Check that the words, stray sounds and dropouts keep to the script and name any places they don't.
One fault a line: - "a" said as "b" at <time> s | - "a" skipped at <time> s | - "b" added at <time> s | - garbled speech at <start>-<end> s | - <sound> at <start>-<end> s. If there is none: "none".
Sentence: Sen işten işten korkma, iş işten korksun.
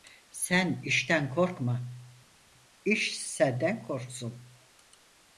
- "işten" skipped at 1.4 s
- "işten" said as "senden" at 3.2 s